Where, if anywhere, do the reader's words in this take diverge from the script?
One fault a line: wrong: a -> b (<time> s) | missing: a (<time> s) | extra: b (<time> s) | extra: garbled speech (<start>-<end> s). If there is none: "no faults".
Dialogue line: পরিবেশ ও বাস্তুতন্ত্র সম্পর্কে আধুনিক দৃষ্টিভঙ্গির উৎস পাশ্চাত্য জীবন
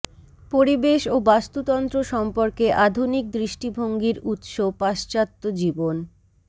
no faults